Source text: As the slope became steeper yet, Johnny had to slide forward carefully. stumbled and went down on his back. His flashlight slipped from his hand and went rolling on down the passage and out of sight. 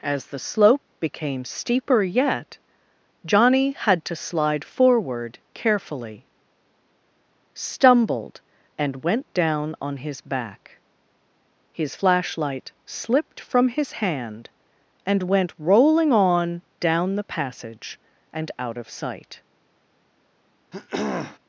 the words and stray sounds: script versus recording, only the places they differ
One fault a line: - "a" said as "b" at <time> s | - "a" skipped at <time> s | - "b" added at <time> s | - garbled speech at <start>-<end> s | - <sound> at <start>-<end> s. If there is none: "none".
- throat clearing at 20.7-21.4 s